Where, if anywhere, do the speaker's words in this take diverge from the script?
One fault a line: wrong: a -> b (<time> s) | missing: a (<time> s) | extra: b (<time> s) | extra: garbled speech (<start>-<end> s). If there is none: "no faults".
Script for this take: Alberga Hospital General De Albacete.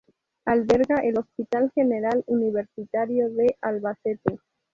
extra: el (1.0 s)
extra: Universitario (2.3 s)